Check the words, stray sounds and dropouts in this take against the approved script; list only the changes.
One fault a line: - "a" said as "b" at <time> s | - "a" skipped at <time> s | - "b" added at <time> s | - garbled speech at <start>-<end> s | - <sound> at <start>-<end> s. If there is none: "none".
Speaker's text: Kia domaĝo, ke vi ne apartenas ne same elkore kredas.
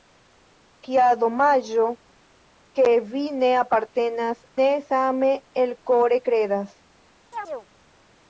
- chirp at 7.3-7.7 s